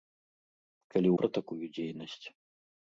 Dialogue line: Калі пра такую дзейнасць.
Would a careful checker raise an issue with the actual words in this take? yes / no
no